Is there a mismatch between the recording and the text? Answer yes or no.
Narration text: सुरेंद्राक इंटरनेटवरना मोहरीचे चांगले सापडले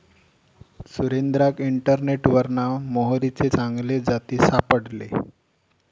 yes